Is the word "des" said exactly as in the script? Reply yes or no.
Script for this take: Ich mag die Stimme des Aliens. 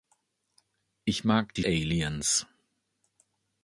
no